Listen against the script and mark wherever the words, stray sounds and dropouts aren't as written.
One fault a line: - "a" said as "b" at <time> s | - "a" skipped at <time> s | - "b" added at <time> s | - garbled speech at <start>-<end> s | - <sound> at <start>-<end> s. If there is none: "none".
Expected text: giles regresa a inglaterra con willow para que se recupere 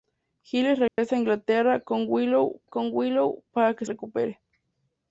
- dropout at 0.9-1.0 s
- "con willow" added at 2.6 s
- "se" skipped at 3.8 s